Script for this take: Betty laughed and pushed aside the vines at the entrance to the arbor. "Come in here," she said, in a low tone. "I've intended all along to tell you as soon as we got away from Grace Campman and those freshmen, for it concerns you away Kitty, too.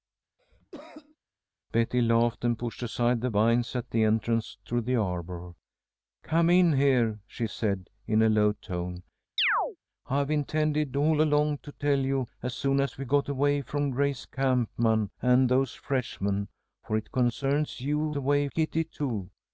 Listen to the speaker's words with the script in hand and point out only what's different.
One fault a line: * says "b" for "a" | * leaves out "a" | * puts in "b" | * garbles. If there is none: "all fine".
all fine